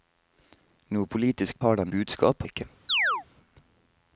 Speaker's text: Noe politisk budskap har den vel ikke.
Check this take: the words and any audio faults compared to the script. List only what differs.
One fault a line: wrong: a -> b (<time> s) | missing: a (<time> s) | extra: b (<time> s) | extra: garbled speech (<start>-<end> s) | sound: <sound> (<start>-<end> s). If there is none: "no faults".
missing: budskap (1.6 s)
wrong: vel -> budskap (1.9 s)
sound: chirp (2.9-3.2 s)